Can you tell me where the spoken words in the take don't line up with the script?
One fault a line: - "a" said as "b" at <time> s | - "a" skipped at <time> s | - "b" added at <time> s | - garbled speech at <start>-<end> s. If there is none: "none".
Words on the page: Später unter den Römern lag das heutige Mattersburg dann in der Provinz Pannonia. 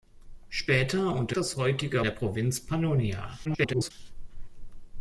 - "den Römern lag" skipped at 1.4 s
- "Mattersburg dann in" skipped at 2.0 s
- garbled speech at 3.4-3.9 s